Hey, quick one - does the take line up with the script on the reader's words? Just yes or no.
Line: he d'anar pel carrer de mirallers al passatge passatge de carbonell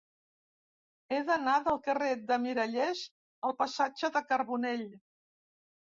no